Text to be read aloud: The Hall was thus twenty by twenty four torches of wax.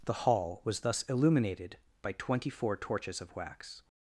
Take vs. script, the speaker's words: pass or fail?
fail